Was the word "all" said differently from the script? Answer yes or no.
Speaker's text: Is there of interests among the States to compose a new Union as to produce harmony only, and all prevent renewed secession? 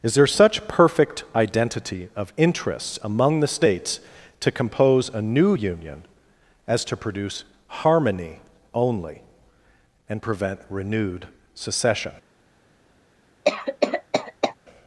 yes